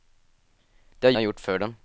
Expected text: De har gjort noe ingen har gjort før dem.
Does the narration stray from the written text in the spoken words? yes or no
yes